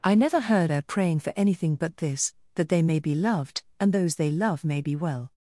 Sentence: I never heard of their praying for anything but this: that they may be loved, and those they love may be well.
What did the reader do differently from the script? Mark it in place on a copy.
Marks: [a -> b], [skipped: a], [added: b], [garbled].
I never heard [skipped: of] their praying for anything but this: that they may be loved, and those they love may be well.